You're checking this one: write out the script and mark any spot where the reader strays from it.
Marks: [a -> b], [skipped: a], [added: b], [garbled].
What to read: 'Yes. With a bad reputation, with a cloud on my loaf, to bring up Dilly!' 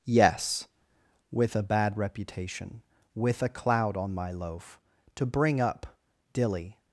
'Yes. With a bad reputation, with a cloud on my loaf, to bring up Dilly!'